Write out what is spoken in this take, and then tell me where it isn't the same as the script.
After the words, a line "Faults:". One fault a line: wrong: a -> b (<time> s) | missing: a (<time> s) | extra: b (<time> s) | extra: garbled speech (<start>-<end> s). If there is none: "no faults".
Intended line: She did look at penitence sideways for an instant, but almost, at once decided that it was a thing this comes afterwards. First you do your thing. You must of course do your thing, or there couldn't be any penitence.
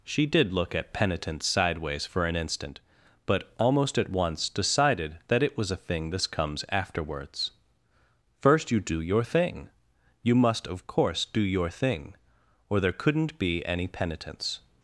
She did look at penitence sideways for an instant, but almost, at once decided that it was a thing this comes afterwards. First you do your thing. You must of course do your thing, or there couldn't be any penitence.
Faults:
no faults